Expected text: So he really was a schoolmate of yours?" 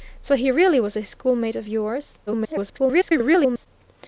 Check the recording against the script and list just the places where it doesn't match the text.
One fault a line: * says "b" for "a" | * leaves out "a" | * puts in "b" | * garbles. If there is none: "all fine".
* garbles